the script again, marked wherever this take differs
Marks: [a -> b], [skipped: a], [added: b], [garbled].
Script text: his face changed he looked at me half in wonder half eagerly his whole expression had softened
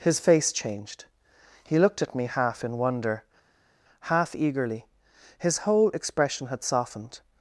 his face changed he looked at me half in wonder half eagerly his whole expression had softened